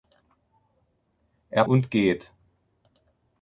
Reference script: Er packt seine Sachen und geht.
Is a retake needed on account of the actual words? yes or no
yes